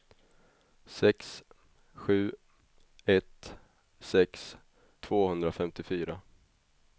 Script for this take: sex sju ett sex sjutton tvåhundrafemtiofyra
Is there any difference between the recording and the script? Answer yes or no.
yes